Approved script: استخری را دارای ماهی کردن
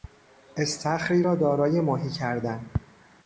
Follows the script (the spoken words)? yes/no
yes